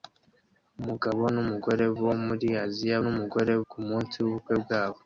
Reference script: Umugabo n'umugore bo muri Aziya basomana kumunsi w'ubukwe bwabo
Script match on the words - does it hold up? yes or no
no